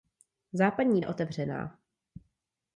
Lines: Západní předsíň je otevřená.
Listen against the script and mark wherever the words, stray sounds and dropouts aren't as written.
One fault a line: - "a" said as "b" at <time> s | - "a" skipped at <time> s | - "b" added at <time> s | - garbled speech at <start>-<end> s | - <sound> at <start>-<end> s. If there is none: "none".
- "předsíň" skipped at 1.0 s